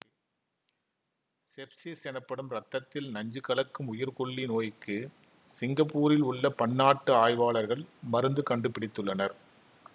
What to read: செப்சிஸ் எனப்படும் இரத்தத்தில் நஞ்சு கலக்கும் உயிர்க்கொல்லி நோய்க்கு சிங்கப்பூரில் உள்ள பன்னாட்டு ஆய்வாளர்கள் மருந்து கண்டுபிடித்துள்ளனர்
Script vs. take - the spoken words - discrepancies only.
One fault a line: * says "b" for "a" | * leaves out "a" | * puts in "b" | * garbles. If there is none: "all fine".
all fine